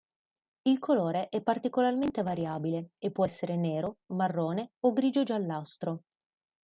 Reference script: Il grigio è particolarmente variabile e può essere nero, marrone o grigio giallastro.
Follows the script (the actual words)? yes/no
no